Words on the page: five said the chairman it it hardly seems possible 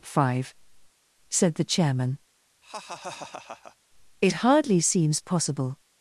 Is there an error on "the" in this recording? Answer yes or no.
no